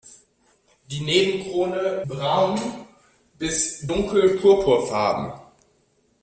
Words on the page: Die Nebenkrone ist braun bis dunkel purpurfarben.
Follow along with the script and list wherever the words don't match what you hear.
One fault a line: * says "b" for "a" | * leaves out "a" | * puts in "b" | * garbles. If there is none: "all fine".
* leaves out "ist"